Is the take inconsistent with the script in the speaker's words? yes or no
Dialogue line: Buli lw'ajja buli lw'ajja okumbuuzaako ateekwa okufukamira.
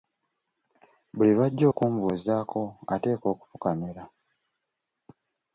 yes